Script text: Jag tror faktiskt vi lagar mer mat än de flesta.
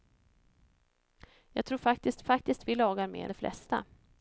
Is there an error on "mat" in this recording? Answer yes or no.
yes